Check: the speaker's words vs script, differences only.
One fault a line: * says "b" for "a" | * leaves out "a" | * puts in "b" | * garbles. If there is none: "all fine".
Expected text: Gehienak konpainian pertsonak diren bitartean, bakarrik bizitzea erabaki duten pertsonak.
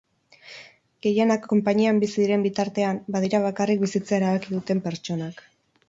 * says "bizi" for "pertsonak"
* puts in "badira"